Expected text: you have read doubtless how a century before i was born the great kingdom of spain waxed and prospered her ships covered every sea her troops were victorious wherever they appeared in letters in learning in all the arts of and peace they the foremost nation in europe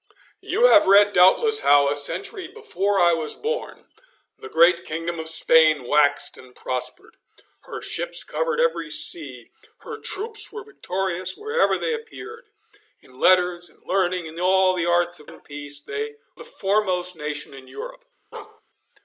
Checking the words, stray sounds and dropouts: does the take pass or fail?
fail